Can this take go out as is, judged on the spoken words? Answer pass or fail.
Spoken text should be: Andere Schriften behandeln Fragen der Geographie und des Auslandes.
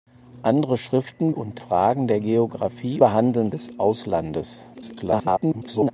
fail